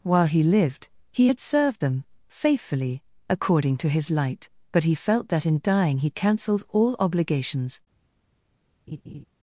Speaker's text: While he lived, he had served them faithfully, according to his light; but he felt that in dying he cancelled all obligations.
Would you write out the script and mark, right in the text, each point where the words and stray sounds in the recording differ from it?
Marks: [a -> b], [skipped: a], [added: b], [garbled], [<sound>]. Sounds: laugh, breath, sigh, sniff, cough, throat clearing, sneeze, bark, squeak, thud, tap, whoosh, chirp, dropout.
While he lived, he had served them faithfully, according to his light; but he felt that in dying he cancelled all obligations. [laugh]